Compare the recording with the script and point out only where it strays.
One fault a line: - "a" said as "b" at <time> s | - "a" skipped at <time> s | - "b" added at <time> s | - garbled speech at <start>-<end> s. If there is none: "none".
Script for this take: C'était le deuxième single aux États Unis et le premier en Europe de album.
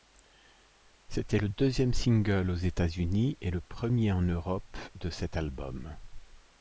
- "cet" added at 5.1 s